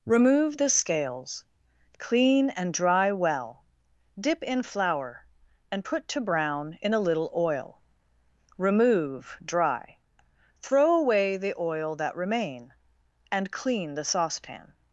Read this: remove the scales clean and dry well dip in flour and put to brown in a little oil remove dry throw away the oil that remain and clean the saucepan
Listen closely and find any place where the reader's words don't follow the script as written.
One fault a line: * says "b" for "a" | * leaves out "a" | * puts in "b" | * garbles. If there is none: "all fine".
all fine